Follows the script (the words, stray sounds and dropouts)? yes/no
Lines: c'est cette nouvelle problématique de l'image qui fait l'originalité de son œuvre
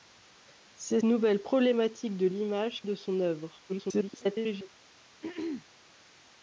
no